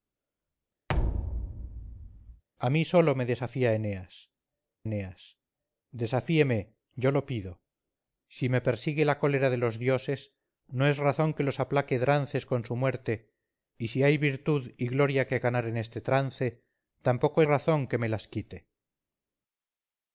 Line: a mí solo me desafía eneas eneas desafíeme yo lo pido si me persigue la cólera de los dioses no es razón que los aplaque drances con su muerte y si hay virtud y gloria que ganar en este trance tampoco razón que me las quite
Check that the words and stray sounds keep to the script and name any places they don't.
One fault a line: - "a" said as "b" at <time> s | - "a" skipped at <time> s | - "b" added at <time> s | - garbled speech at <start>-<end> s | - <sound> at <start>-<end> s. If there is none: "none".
- thud at 0.9-2.4 s